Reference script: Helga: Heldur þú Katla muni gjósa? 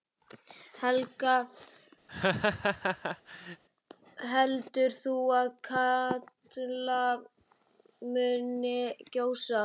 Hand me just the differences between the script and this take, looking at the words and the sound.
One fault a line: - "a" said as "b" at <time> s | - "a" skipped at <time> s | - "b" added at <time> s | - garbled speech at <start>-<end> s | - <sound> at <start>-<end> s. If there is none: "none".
- laugh at 2.1-3.6 s
- "að" added at 5.4 s